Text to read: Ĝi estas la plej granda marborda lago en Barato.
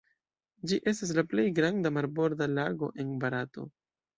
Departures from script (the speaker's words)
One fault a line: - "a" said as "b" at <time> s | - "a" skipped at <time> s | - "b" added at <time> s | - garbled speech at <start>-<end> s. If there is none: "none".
none